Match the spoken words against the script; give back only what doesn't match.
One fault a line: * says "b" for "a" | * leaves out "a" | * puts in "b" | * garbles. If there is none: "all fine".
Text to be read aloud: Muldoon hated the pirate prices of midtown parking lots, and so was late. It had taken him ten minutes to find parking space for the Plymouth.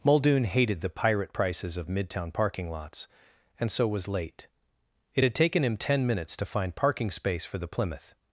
all fine